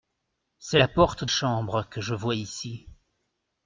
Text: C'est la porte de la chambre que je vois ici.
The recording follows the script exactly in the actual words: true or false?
false